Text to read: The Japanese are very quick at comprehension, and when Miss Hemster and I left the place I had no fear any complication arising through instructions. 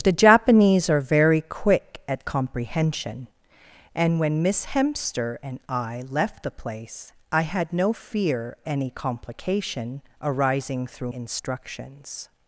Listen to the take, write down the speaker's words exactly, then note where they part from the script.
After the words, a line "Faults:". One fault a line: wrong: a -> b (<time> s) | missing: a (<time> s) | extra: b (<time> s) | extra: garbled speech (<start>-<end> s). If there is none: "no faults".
The Japanese are very quick at comprehension, and when Miss Hemster and I left the place I had no fear any complication arising through instructions.
Faults:
no faults